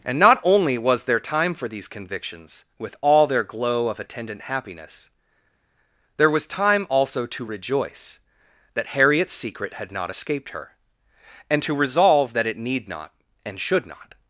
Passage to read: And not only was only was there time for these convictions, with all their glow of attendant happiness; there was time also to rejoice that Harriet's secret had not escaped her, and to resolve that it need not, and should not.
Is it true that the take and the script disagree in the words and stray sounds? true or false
true